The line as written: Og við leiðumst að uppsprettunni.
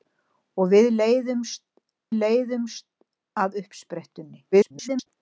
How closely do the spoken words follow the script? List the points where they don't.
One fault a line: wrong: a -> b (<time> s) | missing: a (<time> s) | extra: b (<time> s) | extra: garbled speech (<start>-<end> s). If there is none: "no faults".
extra: leiðumst (2.2 s)
extra: garbled speech (4.5-5.1 s)